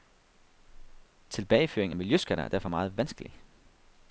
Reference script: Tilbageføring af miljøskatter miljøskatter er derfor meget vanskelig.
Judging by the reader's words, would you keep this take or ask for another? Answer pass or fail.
fail